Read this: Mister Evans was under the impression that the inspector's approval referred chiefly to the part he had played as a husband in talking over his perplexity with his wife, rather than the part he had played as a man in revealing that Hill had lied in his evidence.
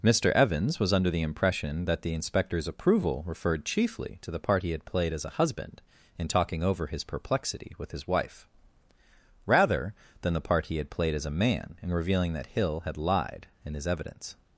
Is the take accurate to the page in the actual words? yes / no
yes